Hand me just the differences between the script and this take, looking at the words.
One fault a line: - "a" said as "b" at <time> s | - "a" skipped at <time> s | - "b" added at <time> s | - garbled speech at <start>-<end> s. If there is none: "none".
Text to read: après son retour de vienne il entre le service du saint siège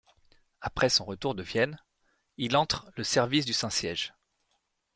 none